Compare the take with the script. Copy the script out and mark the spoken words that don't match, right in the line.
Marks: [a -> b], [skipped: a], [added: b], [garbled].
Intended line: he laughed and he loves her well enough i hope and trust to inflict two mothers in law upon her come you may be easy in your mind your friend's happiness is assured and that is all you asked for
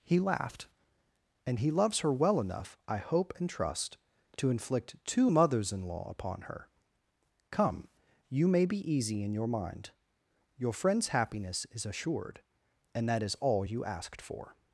he laughed and he loves her well enough i hope and trust to inflict two mothers in law upon her come you may be easy in your mind your friend's happiness is assured and that is all you asked for